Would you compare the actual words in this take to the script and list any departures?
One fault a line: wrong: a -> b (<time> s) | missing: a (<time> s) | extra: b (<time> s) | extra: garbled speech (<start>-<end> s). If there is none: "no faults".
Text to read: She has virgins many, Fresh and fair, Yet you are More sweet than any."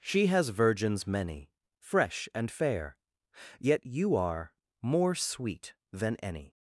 no faults